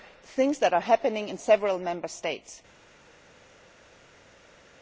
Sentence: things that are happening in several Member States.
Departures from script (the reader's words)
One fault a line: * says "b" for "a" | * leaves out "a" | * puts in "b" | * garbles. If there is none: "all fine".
all fine